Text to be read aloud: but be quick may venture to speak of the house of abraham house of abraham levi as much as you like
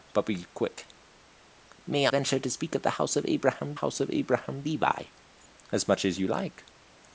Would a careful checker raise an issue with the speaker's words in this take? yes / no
no